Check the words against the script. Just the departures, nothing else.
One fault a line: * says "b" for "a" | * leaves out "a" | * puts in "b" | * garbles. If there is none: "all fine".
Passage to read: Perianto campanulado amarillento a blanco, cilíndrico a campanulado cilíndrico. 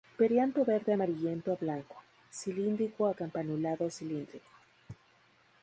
* says "verde" for "campanulado"